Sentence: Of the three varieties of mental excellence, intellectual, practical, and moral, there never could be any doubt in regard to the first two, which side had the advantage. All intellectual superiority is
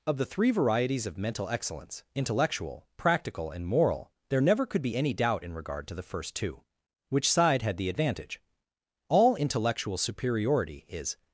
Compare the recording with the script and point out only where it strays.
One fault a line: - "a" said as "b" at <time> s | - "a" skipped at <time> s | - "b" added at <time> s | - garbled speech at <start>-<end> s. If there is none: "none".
none